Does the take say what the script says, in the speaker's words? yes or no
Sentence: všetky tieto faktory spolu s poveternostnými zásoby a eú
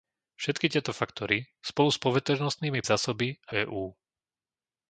yes